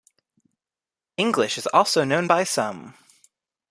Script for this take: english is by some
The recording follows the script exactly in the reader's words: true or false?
false